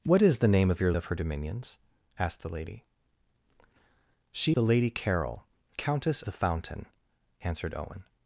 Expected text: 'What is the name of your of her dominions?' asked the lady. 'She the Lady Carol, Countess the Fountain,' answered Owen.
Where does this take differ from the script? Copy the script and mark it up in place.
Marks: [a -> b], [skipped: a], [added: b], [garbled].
'What is the name of your of her dominions?' asked the lady. 'She the Lady Carol, Countess the Fountain,' answered Owen.